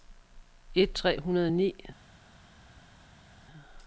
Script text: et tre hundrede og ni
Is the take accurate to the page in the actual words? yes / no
yes